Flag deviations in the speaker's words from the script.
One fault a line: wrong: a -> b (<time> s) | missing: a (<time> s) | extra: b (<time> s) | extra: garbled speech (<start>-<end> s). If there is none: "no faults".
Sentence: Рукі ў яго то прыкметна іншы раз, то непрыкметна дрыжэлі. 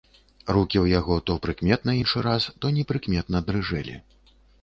no faults